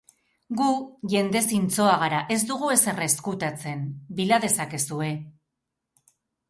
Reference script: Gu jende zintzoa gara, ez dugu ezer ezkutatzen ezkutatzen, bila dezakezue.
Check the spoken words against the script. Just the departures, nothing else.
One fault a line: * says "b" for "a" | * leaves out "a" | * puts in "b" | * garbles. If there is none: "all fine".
* leaves out "ezkutatzen"